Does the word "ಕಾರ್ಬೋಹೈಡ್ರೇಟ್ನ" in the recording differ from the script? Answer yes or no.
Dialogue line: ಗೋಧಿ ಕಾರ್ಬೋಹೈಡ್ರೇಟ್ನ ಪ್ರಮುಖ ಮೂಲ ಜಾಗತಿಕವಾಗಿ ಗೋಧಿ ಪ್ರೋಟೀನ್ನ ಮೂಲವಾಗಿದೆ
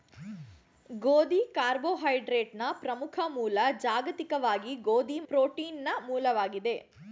no